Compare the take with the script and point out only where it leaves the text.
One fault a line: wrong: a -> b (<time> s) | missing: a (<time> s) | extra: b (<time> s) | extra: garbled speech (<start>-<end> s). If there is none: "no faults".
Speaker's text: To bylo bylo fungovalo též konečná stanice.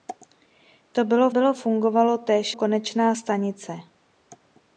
no faults